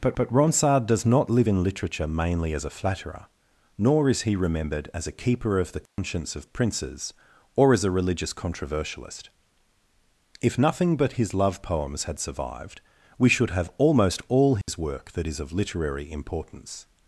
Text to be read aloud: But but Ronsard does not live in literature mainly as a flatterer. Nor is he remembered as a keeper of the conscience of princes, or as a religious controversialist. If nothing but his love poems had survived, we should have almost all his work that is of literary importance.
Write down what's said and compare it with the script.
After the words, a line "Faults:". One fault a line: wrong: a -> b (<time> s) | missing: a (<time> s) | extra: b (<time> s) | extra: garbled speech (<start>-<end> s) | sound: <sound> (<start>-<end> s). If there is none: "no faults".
But but Ronsard does not live in literature mainly as a flatterer. Nor is he remembered as a keeper of the conscience of princes, or as a religious controversialist. If nothing but his love poems had survived, we should have almost all his work that is of literary importance.
Faults:
sound: dropout (5.9-6.0 s)
sound: dropout (14.6-14.7 s)